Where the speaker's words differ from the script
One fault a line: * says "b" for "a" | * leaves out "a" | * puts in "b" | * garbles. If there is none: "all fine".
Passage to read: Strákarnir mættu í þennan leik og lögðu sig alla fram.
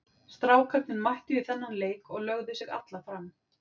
all fine